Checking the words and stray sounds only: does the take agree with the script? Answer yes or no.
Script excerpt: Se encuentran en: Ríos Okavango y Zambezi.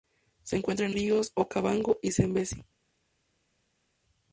yes